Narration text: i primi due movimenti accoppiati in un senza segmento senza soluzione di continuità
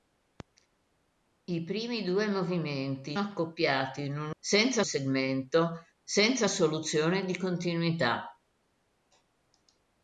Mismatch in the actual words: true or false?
false